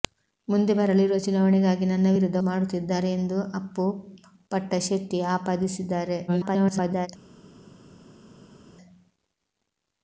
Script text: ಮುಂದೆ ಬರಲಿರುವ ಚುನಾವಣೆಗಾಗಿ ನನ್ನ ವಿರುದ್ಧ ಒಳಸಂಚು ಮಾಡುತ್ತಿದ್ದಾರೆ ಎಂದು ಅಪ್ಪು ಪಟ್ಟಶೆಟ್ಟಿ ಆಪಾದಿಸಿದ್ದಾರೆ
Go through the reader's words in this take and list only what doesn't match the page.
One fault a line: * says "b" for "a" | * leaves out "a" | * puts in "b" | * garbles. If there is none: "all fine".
* leaves out "ಒಳಸಂಚು"
* garbles